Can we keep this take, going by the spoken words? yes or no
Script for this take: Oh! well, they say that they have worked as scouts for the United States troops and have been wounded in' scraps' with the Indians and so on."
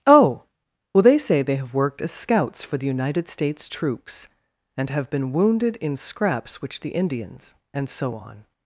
no